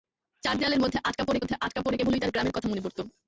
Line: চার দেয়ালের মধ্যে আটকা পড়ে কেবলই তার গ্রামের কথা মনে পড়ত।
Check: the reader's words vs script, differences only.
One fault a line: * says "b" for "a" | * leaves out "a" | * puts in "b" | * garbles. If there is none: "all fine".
* puts in "মধ্যে আটকা পড়ে"